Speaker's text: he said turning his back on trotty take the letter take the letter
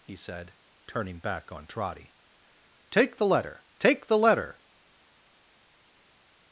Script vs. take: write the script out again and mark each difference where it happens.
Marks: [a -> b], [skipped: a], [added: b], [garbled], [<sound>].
he said turning [skipped: his] back on trotty take the letter take the letter